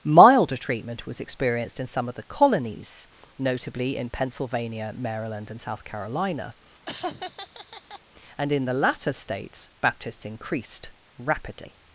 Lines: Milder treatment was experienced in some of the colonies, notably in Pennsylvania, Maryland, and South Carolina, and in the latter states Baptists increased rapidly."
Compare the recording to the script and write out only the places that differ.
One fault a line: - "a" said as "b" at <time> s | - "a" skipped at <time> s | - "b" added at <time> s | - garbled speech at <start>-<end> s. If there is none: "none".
none